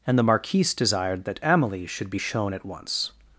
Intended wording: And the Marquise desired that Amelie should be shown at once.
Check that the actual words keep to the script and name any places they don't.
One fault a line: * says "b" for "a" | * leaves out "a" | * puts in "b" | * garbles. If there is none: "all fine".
all fine